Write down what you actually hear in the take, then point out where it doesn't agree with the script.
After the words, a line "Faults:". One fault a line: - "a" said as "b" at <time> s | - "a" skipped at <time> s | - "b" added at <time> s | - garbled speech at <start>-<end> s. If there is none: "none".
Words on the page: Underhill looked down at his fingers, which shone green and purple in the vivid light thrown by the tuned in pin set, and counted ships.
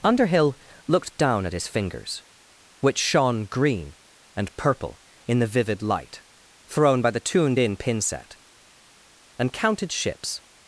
Underhill looked down at his fingers, which shone green and purple in the vivid light thrown by the tuned in pin set, and counted ships.
Faults:
none